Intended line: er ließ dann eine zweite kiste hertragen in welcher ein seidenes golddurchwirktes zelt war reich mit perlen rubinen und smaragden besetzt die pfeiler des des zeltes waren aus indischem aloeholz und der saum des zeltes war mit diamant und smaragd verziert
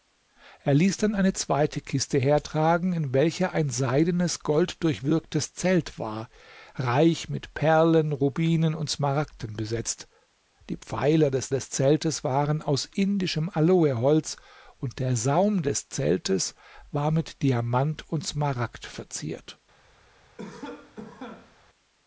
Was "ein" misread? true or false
false